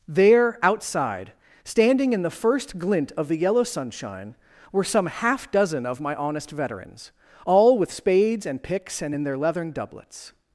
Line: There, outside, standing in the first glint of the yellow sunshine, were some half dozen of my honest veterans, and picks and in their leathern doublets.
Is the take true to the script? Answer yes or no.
no